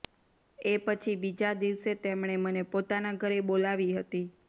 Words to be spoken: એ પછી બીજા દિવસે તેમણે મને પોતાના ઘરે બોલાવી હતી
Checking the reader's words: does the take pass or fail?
pass